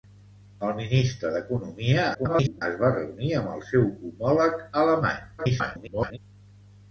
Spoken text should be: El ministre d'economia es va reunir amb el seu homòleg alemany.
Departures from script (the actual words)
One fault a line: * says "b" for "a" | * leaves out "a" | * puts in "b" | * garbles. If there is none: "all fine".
* garbles
* garbles